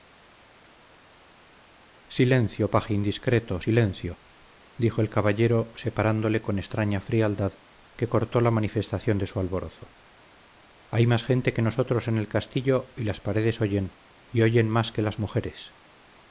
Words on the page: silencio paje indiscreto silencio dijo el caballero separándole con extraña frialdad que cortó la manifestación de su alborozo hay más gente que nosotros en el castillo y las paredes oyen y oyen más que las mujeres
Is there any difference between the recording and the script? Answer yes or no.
no